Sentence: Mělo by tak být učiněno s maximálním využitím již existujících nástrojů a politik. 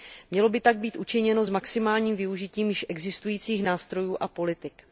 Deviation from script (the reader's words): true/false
false